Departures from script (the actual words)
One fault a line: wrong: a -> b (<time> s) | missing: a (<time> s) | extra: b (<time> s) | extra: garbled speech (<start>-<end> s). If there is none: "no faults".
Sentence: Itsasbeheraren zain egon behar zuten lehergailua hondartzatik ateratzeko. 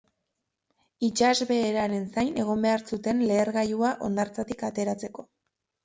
no faults